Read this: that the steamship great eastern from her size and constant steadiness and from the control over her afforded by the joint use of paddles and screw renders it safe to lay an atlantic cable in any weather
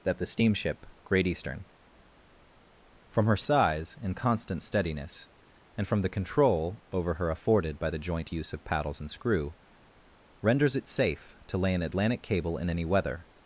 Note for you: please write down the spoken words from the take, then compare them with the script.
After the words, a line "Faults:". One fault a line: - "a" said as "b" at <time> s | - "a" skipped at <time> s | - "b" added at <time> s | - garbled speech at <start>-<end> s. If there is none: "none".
that the steamship great eastern from her size and constant steadiness and from the control over her afforded by the joint use of paddles and screw renders it safe to lay an atlantic cable in any weather
Faults:
none